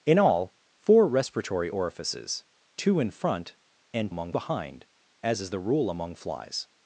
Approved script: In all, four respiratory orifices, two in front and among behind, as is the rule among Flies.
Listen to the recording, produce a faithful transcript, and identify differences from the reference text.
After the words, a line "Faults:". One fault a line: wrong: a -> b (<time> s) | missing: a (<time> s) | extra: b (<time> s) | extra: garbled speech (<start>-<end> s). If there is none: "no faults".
In all, four respiratory orifices, two in front and among behind, as is the rule among Flies.
Faults:
no faults